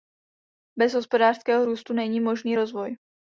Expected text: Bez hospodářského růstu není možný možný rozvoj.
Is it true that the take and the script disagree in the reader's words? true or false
true